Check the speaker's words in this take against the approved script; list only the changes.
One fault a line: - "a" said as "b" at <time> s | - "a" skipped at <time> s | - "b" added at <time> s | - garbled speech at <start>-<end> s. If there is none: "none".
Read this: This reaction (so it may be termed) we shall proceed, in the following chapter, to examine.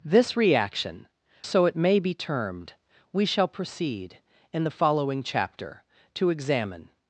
none